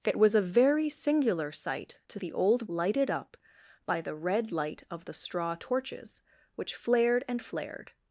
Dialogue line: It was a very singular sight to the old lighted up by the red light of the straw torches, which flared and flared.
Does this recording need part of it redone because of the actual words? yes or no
no